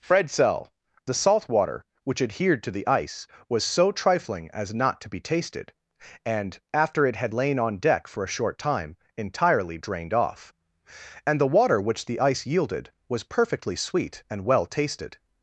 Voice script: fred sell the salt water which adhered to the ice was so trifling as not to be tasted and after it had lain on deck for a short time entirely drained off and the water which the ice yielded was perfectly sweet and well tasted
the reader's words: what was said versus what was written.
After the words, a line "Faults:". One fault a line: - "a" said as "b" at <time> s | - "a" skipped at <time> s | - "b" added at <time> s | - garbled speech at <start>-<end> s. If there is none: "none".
fred sell the salt water which adhered to the ice was so trifling as not to be tasted and after it had lain on deck for a short time entirely drained off and the water which the ice yielded was perfectly sweet and well tasted
Faults:
none